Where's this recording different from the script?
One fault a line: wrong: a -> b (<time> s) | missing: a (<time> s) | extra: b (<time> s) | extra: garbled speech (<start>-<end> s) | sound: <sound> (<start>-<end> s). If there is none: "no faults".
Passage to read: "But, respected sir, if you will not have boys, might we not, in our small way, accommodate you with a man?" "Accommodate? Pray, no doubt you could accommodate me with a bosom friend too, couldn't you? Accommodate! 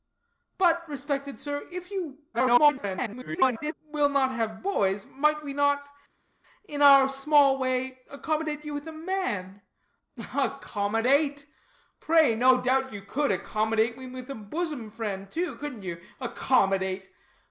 extra: garbled speech (2.3-3.7 s)